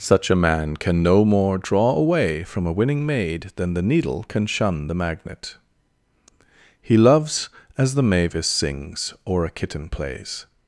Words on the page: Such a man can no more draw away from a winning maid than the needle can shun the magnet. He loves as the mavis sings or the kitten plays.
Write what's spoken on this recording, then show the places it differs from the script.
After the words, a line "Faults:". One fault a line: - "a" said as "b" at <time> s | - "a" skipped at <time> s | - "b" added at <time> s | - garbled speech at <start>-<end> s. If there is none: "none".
Such a man can no more draw away from a winning maid than the needle can shun the magnet. He loves as the mavis sings or a kitten plays.
Faults:
- "the" said as "a" at 9.4 s